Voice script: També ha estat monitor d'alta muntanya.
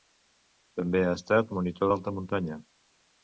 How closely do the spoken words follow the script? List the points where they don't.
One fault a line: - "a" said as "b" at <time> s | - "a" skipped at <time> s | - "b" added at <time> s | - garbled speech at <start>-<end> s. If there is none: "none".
none